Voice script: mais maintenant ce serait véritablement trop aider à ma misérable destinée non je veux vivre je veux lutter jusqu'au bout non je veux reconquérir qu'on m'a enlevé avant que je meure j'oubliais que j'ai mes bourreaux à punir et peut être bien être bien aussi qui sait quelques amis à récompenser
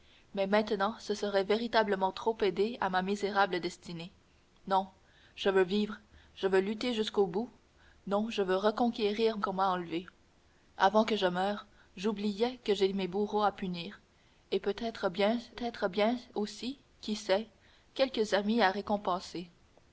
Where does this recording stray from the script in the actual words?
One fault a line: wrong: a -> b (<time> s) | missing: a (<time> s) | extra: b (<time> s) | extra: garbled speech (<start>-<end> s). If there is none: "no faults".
no faults